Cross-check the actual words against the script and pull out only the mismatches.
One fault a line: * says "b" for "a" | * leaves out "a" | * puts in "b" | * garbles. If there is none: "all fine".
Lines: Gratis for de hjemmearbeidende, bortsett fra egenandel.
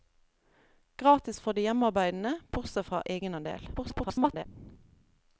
* garbles